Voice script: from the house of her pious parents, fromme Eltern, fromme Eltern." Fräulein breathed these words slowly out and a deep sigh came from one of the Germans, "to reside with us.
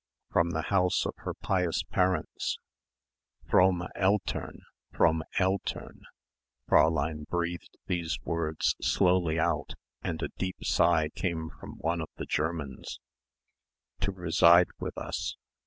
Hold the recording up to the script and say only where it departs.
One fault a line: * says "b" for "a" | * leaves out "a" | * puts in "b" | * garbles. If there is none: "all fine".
all fine